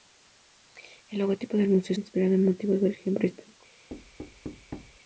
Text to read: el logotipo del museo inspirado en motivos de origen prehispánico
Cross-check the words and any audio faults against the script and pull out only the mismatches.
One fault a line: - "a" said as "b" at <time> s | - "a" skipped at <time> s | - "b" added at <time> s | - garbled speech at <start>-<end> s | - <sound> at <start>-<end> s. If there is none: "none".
- thud at 3.9-5.0 s